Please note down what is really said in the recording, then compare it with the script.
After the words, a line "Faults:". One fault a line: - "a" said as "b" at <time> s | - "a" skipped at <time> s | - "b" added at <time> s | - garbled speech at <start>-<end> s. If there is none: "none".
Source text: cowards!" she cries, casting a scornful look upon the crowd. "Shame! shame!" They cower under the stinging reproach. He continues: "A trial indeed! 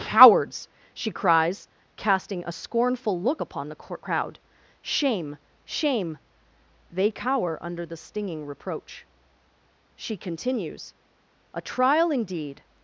cowards!" she cries, casting a scornful look upon the crowd. "Shame! shame!" They cower under the stinging reproach. She continues: "A trial indeed!
Faults:
- "He" said as "She" at 9.9 s